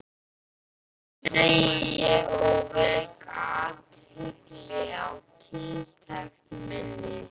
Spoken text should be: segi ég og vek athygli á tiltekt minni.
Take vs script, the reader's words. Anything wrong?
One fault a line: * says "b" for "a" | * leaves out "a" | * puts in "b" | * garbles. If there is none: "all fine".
all fine